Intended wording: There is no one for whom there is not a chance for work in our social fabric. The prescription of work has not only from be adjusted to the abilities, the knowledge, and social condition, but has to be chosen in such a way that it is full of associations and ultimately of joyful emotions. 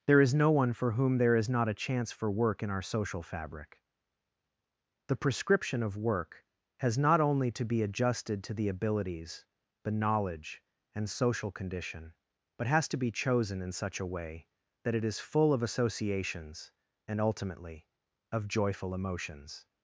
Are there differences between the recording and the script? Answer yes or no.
yes